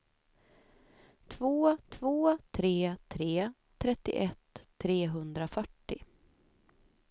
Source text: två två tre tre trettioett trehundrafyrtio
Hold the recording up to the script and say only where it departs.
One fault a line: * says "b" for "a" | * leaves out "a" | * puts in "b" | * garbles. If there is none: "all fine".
all fine